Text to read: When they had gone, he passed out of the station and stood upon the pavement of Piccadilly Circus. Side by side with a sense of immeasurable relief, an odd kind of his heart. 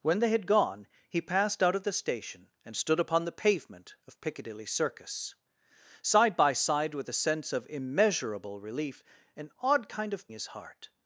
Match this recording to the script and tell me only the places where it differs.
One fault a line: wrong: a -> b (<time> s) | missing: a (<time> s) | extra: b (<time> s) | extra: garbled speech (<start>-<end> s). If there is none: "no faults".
no faults